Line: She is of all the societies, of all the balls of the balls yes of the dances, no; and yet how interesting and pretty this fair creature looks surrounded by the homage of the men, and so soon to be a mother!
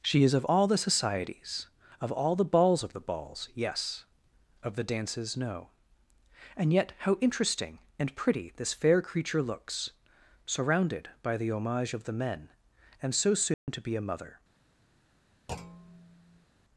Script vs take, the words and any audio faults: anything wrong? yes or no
yes